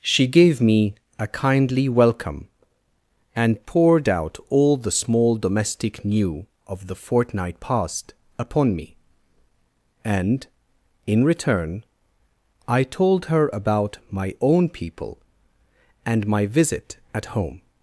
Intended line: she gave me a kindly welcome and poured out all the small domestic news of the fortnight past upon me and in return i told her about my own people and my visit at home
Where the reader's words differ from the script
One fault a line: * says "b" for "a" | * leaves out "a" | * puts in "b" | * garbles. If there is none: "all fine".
* says "new" for "news"